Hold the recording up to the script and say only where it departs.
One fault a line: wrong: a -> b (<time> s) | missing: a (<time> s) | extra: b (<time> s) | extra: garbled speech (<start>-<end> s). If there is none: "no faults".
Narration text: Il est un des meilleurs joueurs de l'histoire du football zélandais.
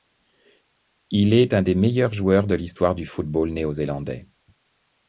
extra: néo (3.5 s)